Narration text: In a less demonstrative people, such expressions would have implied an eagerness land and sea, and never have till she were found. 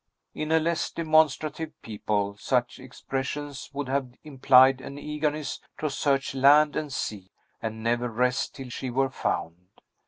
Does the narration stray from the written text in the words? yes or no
yes